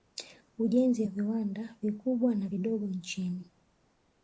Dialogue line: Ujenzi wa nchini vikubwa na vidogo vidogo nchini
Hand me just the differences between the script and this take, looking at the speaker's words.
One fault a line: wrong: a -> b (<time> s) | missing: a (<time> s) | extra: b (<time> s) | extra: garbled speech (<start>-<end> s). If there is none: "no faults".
wrong: nchini -> viwanda (1.1 s)
missing: vidogo (2.9 s)